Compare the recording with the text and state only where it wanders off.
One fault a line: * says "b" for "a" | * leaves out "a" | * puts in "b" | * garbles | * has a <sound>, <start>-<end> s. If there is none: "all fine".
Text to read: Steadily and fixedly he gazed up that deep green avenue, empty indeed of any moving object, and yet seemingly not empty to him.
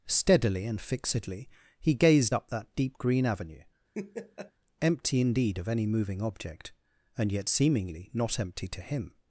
* has a laugh, 3.9-4.5 s